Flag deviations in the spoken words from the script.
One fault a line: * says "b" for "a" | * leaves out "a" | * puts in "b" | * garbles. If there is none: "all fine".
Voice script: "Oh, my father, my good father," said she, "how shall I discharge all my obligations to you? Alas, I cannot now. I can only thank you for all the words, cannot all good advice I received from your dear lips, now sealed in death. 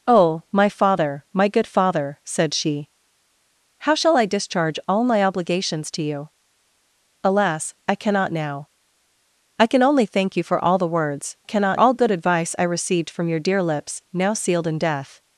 all fine